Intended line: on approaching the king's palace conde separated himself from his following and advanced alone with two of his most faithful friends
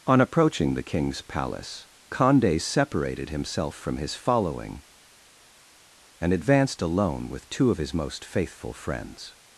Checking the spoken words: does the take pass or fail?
pass